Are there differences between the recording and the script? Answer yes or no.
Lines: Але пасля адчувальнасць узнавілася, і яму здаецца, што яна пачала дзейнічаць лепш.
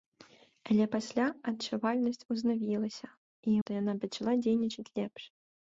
yes